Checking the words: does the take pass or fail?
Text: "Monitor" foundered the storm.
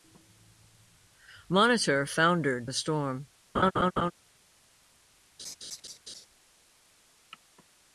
pass